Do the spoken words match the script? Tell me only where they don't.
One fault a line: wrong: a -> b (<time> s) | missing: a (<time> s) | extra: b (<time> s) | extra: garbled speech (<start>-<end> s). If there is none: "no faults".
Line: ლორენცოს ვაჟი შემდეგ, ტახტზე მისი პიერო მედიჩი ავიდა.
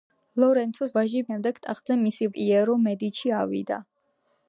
no faults